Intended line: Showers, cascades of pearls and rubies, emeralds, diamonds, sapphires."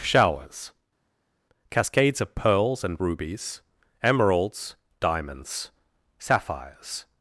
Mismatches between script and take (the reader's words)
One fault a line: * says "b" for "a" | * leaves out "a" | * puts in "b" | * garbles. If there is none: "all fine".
all fine